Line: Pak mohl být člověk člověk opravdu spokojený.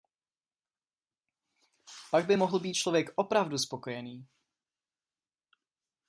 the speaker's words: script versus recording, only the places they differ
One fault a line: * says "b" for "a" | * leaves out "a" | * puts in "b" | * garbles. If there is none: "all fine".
* puts in "by"
* leaves out "člověk"